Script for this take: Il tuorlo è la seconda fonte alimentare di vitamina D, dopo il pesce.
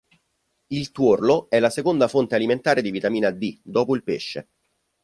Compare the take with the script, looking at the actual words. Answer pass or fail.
pass